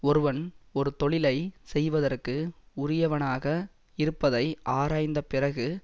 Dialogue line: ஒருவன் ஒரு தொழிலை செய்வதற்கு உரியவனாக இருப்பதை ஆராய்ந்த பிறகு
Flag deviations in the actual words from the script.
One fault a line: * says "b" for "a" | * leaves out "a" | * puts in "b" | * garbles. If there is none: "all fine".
all fine